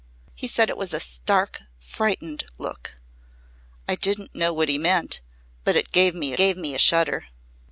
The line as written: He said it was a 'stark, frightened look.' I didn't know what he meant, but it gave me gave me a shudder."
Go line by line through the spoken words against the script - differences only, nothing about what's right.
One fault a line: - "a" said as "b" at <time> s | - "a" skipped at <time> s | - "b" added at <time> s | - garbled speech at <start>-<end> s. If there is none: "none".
none